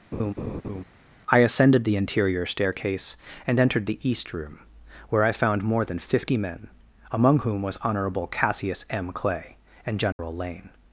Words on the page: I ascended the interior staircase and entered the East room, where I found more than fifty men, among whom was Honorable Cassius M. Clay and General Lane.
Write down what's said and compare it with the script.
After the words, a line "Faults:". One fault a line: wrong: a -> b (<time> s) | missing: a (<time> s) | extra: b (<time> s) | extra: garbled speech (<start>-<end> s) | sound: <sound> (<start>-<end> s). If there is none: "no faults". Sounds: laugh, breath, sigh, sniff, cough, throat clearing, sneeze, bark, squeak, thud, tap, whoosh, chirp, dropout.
I ascended the interior staircase and entered the East room, where I found more than fifty men, among whom was Honorable Cassius M. Clay and General Lane.
Faults:
sound: laugh (0.1-0.8 s)
sound: dropout (10.1-10.2 s)